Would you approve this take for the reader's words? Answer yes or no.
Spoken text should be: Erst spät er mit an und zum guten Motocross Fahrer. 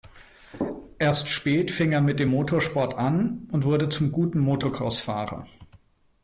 no